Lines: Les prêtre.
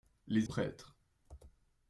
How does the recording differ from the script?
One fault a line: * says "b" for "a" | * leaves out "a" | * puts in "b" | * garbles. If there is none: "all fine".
all fine